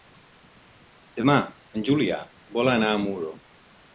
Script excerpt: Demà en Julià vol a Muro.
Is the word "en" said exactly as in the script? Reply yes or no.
yes